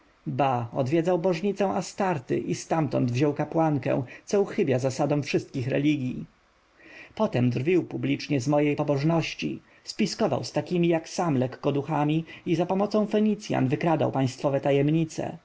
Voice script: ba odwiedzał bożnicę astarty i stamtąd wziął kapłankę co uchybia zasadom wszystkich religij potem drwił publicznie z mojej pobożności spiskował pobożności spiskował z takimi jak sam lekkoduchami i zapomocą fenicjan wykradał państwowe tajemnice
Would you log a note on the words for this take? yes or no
yes